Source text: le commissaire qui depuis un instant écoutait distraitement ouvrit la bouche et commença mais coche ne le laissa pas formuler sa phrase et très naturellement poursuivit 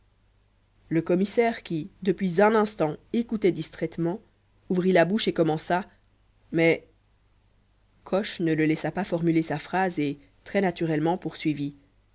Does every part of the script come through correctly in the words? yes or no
yes